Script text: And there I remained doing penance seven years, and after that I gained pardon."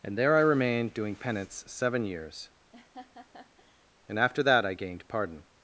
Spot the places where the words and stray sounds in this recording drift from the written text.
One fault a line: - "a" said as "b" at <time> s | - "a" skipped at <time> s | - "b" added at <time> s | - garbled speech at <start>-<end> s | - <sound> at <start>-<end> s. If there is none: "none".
- laugh at 2.7-3.9 s